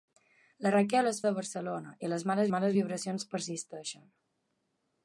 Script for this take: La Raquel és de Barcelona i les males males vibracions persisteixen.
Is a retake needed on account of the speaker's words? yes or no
no